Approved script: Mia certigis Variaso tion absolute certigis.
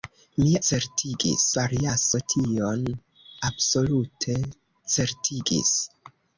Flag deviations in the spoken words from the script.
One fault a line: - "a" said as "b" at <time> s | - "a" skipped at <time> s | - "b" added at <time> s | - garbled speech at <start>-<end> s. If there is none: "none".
none